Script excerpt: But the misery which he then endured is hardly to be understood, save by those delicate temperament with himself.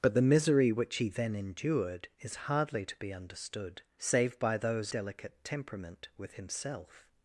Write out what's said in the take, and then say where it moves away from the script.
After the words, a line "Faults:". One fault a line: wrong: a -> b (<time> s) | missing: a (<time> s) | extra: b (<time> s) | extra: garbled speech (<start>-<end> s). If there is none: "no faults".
But the misery which he then endured is hardly to be understood, save by those delicate temperament with himself.
Faults:
no faults